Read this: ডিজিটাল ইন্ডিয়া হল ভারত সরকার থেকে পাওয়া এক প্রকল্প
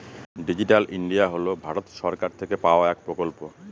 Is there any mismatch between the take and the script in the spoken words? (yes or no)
no